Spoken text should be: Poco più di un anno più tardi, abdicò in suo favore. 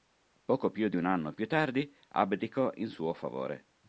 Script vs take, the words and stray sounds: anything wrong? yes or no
no